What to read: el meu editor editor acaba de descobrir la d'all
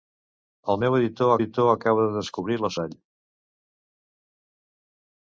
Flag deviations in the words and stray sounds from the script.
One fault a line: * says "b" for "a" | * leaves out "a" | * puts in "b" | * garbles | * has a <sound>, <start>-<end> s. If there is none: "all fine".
all fine